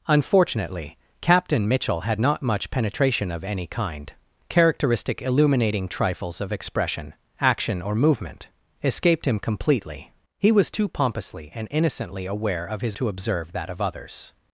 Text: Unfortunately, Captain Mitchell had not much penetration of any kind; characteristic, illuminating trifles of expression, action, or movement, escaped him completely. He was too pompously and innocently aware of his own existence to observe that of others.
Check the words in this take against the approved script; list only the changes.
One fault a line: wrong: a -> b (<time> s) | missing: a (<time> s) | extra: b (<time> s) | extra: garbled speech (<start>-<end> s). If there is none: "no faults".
missing: own existence (13.0 s)